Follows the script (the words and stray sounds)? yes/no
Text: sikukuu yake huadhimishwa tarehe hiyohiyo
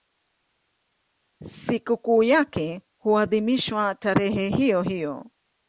yes